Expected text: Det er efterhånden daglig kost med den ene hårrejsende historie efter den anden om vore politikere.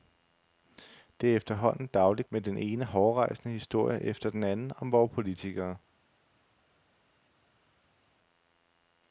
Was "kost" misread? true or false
true